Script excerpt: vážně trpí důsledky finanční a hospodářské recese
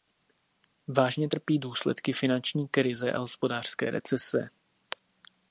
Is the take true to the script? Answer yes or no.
no